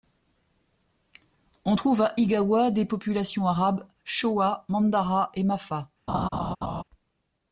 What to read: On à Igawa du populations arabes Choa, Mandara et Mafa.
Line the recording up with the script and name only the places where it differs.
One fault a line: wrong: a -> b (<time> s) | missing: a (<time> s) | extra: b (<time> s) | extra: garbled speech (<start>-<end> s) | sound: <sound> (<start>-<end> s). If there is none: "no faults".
extra: trouve (1.7 s)
wrong: du -> des (2.7 s)
sound: laugh (6.1-6.8 s)